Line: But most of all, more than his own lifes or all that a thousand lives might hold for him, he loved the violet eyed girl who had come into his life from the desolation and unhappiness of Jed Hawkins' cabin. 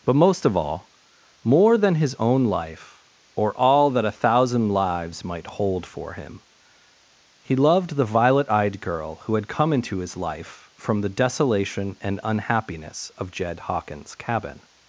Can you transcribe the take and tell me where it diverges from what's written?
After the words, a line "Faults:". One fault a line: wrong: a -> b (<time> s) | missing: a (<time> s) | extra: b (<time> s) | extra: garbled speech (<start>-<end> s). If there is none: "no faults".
But most of all, more than his own life or all that a thousand lives might hold for him, he loved the violet eyed girl who had come into his life from the desolation and unhappiness of Jed Hawkins' cabin.
Faults:
wrong: lifes -> life (2.5 s)